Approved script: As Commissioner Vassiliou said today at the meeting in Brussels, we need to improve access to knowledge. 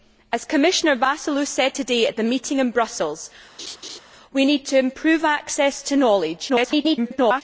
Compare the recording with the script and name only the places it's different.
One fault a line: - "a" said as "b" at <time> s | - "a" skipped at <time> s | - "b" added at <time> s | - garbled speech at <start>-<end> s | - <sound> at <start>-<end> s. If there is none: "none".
- laugh at 3.6-4.0 s
- garbled speech at 6.5-7.4 s